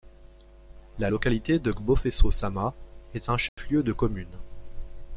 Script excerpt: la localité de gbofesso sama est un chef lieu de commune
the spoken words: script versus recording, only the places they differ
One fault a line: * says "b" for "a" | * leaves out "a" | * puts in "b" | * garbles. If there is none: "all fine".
all fine